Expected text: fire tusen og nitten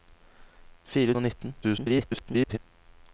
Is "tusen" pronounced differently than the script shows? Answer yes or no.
yes